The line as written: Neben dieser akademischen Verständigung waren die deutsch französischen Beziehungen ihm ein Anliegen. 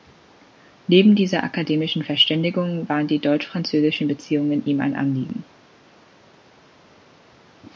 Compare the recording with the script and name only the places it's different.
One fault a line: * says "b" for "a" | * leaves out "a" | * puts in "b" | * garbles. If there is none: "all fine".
all fine